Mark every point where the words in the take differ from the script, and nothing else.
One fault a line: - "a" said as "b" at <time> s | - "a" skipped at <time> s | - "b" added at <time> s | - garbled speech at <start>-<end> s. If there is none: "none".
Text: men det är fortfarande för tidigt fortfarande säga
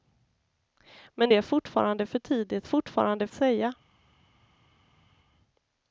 none